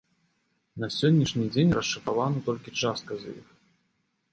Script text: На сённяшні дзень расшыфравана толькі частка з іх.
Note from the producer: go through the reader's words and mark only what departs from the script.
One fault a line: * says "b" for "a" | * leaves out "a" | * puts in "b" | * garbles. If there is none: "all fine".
all fine